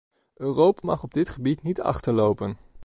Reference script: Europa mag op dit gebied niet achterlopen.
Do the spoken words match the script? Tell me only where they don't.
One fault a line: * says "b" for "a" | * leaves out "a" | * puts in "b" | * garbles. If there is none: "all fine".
all fine